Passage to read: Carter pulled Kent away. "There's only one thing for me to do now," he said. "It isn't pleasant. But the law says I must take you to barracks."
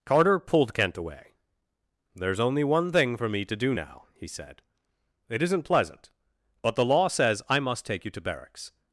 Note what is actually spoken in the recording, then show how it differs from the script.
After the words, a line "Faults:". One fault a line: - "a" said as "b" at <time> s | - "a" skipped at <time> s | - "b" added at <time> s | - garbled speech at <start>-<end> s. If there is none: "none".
Carter pulled Kent away. "There's only one thing for me to do now," he said. "It isn't pleasant. But the law says I must take you to barracks."
Faults:
none